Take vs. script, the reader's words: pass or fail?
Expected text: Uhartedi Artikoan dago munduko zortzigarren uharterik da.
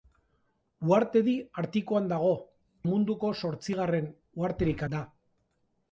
pass